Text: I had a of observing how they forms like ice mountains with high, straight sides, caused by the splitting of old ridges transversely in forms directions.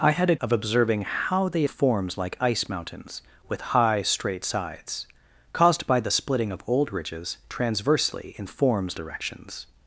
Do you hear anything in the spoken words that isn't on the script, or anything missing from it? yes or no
no